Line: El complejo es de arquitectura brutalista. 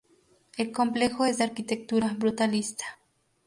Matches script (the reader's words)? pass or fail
pass